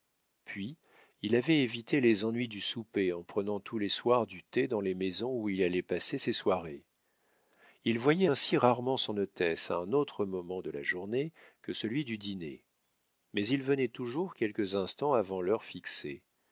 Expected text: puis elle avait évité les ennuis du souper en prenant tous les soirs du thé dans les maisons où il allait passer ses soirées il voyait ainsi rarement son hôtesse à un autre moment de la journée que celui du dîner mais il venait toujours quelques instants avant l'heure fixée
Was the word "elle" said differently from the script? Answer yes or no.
yes